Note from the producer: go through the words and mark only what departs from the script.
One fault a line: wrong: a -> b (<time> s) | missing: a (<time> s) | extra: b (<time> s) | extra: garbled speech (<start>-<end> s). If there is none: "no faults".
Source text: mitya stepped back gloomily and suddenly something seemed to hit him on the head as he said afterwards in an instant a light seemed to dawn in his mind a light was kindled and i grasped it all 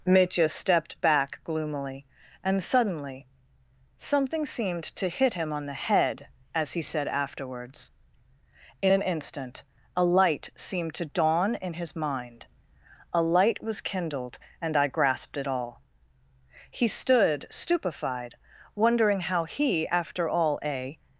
extra: he stood stupefied wondering how he after all a (16.7 s)